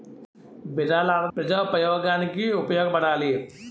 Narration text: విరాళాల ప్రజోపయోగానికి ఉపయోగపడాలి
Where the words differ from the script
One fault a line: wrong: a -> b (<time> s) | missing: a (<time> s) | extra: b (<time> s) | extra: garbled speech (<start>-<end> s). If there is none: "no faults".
no faults